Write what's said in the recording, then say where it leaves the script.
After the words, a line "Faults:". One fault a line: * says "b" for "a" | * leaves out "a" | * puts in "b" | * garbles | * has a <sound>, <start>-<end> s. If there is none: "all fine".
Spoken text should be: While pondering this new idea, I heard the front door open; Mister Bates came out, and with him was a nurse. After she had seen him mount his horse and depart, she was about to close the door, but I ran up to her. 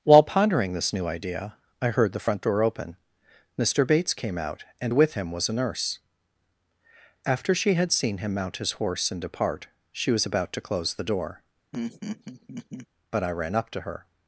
While pondering this new idea, I heard the front door open; Mister Bates came out, and with him was a nurse. After she had seen him mount his horse and depart, she was about to close the door, but I ran up to her.
Faults:
* has a laugh, 11.7-12.9 s